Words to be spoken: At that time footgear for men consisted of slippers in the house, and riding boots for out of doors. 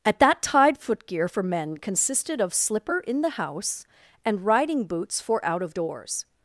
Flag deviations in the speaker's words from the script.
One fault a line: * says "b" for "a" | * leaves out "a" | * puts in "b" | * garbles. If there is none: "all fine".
* says "tide" for "time"
* says "slipper" for "slippers"